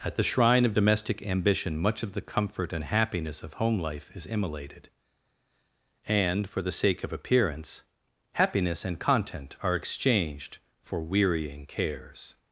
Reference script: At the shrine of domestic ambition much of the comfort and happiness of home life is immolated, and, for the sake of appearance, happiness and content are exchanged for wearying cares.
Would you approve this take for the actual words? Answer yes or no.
yes